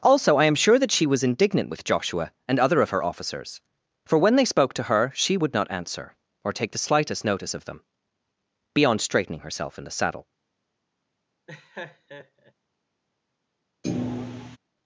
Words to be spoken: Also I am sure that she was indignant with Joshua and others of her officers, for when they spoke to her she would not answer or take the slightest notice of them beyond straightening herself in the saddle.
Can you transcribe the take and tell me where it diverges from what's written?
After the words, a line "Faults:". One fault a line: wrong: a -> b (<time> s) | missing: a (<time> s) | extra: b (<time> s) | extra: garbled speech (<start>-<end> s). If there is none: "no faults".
Also I am sure that she was indignant with Joshua and other of her officers, for when they spoke to her she would not answer or take the slightest notice of them beyond straightening herself in the saddle.
Faults:
wrong: others -> other (2.6 s)